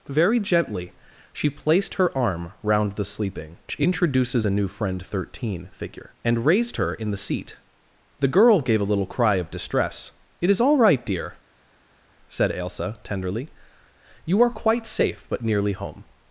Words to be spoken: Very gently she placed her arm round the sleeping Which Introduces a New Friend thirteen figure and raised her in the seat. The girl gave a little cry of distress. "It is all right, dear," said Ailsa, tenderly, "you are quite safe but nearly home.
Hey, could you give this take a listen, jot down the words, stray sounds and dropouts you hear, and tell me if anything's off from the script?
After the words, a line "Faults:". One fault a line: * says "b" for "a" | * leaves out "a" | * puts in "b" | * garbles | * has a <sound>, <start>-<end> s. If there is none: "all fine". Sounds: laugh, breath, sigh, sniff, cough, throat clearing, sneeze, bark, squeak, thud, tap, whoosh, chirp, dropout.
Very gently she placed her arm round the sleeping Which Introduces a New Friend thirteen figure and raised her in the seat. The girl gave a little cry of distress. "It is all right, dear," said Ailsa, tenderly, "you are quite safe but nearly home.
Faults:
all fine